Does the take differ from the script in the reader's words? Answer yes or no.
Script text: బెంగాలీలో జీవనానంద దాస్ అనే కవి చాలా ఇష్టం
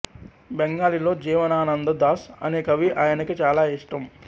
yes